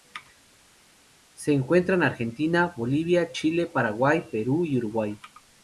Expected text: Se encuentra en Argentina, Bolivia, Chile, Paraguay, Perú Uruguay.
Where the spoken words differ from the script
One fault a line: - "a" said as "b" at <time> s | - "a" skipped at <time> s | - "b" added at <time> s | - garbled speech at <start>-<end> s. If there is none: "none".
- "y" added at 4.6 s